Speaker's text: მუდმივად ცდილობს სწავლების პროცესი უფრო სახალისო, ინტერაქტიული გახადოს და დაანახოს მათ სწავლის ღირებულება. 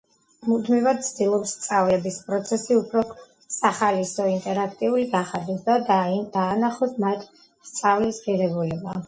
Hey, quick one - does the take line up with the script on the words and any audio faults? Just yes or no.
yes